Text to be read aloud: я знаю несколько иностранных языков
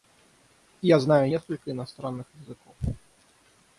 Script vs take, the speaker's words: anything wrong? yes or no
no